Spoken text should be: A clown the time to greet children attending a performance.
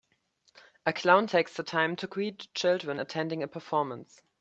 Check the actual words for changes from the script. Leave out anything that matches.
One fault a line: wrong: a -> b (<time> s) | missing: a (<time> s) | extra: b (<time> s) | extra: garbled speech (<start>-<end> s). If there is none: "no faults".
extra: takes (1.2 s)